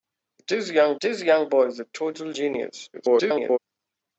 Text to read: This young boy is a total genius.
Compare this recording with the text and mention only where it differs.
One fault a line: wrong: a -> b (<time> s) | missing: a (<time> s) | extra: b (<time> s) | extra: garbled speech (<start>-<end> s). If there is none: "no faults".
extra: this young (1.0 s)
extra: garbled speech (2.9-3.6 s)